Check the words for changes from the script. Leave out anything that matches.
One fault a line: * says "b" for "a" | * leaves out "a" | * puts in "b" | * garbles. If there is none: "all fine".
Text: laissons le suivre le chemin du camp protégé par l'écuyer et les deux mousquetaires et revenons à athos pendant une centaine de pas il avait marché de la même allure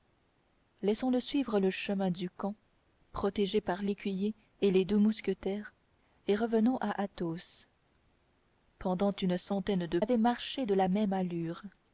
* leaves out "pas il"